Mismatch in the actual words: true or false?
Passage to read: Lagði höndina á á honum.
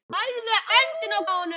false